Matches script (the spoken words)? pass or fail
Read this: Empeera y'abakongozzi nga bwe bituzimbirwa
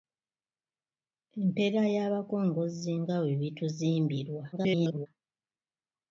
fail